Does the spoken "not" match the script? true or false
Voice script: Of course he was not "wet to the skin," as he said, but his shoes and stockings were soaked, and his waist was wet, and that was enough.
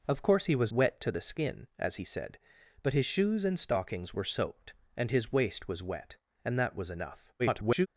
false